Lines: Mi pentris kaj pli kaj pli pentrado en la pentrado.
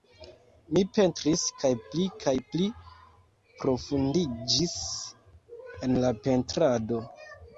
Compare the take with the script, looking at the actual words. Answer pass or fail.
fail